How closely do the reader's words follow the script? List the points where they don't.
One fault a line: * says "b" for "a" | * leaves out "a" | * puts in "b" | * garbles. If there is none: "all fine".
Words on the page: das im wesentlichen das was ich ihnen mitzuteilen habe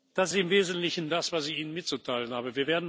all fine